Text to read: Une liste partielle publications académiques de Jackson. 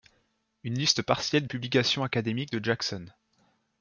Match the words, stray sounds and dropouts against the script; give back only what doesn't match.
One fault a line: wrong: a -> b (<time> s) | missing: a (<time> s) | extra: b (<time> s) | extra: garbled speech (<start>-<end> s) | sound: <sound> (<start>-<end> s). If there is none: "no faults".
no faults